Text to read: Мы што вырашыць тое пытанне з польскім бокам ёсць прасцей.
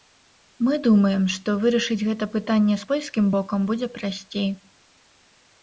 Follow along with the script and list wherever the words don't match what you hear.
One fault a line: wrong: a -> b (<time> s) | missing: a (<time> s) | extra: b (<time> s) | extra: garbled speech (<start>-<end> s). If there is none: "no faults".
extra: думаем (0.9 s)
wrong: тое -> гэта (2.1 s)
wrong: ёсць -> будзе (3.7 s)